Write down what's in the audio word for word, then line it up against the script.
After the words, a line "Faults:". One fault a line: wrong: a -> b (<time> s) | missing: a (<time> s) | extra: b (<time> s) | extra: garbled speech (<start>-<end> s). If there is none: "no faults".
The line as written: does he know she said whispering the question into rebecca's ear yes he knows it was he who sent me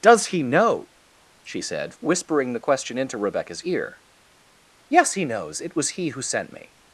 does he know she said whispering the question into rebecca's ear yes he knows it was he who sent me
Faults:
no faults